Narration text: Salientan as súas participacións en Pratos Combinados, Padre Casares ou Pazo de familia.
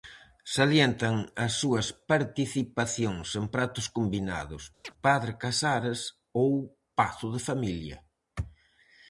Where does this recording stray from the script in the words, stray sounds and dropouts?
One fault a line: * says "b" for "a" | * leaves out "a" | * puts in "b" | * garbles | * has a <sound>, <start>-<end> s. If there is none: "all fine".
* has a chirp, 4.8-4.9 s